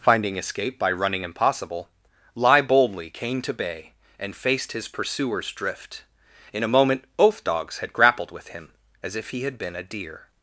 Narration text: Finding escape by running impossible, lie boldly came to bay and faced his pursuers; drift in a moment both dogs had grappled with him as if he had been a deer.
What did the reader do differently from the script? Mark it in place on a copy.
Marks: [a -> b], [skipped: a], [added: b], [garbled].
Finding escape by running impossible, lie boldly came to bay and faced his pursuers; drift in a moment both dogs had grappled with him as if he had been a deer.